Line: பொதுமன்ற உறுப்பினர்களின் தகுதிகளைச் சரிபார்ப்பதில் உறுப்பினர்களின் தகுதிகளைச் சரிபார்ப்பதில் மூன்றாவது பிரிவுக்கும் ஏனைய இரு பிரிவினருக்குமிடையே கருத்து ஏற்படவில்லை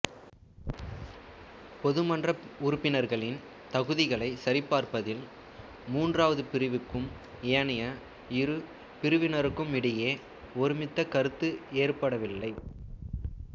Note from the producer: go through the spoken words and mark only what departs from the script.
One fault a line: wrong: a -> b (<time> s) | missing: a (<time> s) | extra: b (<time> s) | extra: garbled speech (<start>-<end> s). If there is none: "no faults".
missing: உறுப்பினர்களின் தகுதிகளைச் சரிபார்ப்பதில் (5.2 s)
extra: ஒருமித்த (10.6 s)